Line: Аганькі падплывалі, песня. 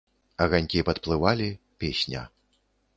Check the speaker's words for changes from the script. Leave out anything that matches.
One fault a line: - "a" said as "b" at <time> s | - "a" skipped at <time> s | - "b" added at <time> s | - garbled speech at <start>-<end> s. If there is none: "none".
none